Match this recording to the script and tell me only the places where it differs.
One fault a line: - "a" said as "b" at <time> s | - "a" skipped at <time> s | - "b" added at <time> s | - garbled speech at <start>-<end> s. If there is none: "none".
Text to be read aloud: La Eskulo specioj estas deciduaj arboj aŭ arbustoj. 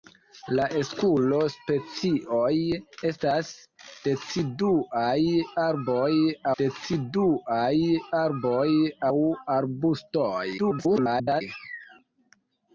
- "deciduaj arboj" added at 6.6 s
- garbled speech at 10.6-11.4 s